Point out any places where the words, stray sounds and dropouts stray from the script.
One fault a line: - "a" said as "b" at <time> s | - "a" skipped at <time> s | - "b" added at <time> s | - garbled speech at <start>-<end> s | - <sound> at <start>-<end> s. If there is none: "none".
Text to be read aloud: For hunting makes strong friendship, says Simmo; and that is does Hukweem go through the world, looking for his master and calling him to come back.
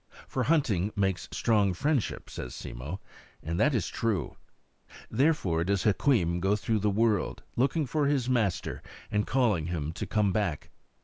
- "true Therefore" added at 3.9 s